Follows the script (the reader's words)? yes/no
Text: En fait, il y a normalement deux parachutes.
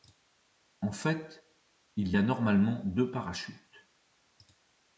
yes